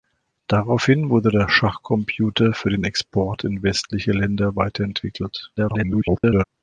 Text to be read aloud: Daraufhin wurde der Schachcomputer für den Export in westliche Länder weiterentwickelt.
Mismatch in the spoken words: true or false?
true